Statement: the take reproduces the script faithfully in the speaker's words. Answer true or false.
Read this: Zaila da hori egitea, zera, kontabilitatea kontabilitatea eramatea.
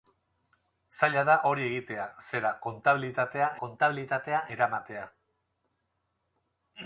true